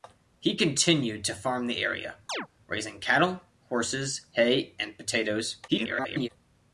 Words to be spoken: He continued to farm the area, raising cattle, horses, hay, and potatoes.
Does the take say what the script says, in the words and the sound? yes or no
no